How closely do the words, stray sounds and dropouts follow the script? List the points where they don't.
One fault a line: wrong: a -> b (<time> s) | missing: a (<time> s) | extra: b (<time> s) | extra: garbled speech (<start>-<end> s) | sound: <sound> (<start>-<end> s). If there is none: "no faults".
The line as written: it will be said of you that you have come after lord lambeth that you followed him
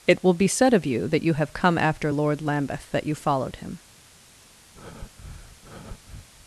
sound: breath (4.7-6.3 s)